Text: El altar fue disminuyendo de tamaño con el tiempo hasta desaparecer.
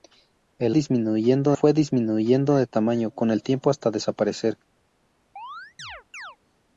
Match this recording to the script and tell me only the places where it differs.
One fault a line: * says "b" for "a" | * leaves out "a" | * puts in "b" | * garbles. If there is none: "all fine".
* says "disminuyendo" for "altar"